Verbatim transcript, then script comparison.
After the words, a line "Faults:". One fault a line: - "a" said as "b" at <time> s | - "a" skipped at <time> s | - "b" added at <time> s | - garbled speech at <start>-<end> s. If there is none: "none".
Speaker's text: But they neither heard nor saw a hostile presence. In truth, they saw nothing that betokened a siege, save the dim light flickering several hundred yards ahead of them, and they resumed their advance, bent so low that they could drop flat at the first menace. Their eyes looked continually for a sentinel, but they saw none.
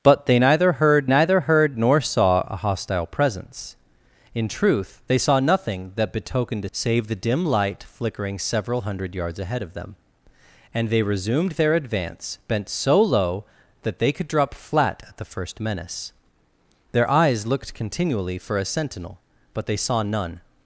But they neither heard neither heard nor saw a hostile presence. In truth, they saw nothing that betokened a save the dim light flickering several hundred yards ahead of them, and they resumed their advance, bent so low that they could drop flat at the first menace. Their eyes looked continually for a sentinel, but they saw none.
Faults:
- "neither heard" added at 1.1 s
- "siege" skipped at 6.7 s